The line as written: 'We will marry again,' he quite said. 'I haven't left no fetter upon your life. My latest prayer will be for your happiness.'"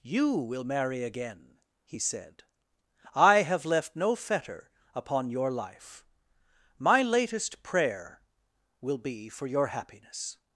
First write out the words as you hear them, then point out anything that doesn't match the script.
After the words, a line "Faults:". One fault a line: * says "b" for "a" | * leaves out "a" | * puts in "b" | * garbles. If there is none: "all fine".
'You will marry again,' he said. 'I have left no fetter upon your life. My latest prayer will be for your happiness.'"
Faults:
* says "You" for "We"
* leaves out "quite"
* says "have" for "haven't"